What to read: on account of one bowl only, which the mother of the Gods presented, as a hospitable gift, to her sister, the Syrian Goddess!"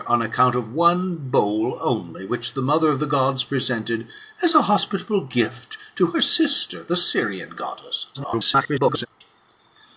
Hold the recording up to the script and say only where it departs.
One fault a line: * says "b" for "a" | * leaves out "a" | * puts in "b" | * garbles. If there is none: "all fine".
* garbles